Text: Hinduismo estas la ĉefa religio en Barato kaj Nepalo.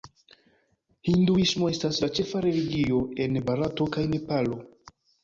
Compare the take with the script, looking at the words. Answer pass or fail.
pass